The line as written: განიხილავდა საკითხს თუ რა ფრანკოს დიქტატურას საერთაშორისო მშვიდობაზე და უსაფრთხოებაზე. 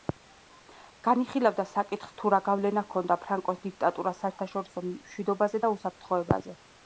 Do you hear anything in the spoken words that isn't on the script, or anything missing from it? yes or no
yes